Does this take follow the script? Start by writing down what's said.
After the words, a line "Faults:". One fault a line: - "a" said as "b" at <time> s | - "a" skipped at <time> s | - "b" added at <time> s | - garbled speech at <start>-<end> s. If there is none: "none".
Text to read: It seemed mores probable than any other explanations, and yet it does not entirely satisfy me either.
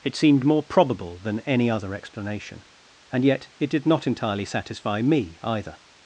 It seemed more probable than any other explanation, and yet it did not entirely satisfy me either.
Faults:
- "mores" said as "more" at 0.4 s
- "explanations" said as "explanation" at 1.9 s
- "does" said as "did" at 3.7 s